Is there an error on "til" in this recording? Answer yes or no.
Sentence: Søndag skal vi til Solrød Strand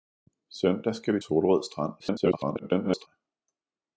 yes